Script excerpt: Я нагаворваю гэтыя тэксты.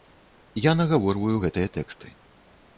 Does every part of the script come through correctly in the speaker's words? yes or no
yes